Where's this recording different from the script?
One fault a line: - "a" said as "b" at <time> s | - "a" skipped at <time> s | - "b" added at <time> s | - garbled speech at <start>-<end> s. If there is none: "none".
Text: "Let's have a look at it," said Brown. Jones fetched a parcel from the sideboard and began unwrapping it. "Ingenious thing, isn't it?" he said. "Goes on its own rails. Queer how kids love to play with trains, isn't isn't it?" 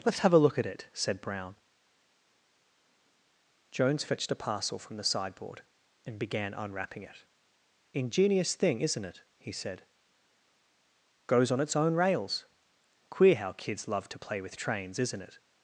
- "isn't" skipped at 15.2 s